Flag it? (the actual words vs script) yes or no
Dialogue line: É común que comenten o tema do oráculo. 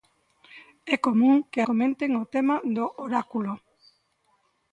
no